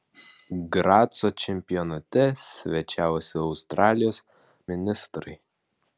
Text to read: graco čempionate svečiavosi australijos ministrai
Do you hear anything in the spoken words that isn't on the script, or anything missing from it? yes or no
no